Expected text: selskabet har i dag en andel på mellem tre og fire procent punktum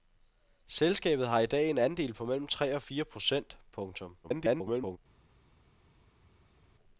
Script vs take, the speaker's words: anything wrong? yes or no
yes